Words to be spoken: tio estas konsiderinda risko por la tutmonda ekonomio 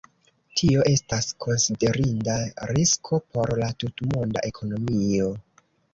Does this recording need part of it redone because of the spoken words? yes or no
no